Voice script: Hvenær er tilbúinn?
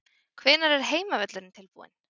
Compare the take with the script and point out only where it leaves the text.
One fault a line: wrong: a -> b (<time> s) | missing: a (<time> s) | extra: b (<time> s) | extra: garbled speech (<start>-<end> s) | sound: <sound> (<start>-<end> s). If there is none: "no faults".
extra: heimavöllurinn (0.9 s)